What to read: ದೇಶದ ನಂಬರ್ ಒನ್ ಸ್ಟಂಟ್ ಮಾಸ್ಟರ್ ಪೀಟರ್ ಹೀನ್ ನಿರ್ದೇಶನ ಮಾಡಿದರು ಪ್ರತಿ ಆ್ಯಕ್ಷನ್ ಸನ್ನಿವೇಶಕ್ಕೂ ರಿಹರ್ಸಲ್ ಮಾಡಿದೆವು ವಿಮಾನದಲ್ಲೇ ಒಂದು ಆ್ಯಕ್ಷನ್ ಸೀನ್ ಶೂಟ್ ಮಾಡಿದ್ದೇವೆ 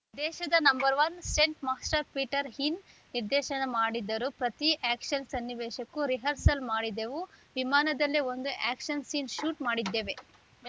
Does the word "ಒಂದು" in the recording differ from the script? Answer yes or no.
no